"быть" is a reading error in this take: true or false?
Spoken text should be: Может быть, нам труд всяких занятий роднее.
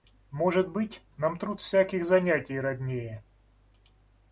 false